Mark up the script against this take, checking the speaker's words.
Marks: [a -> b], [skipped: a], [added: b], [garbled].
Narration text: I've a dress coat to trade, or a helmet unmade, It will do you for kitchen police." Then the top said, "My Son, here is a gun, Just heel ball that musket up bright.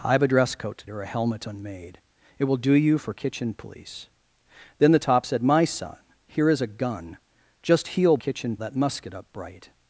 I've a dress coat to [skipped: trade,] or a helmet unmade, It will do you for kitchen police." Then the top said, "My Son, here is a gun, Just heel [ball -> kitchen] that musket up bright.